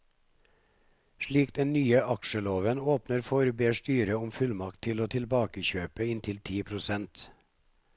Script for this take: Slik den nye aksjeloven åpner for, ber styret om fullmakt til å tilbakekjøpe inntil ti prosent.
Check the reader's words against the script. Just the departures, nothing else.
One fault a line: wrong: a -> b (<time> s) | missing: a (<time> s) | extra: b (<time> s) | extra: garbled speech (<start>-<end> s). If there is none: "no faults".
no faults